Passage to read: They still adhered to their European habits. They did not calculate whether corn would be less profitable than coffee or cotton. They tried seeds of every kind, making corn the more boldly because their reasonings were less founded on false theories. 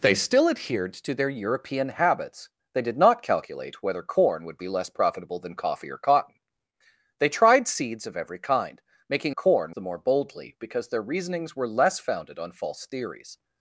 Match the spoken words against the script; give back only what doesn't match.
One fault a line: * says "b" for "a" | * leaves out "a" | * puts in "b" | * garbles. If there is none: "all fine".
all fine